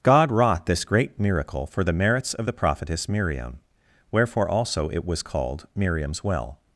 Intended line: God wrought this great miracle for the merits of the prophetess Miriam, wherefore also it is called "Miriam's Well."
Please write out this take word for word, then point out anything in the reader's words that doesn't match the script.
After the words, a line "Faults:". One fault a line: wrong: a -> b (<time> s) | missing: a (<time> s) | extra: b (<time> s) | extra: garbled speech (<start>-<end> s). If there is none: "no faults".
God wrought this great miracle for the merits of the prophetess Miriam, wherefore also it was called "Miriam's Well."
Faults:
wrong: is -> was (5.1 s)